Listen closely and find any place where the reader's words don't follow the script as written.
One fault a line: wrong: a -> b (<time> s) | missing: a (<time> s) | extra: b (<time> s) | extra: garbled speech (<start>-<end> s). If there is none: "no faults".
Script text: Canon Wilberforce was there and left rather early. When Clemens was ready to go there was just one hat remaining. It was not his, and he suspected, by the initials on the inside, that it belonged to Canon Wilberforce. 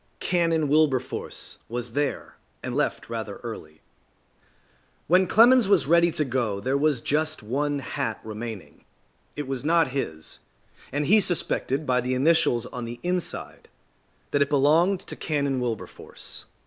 no faults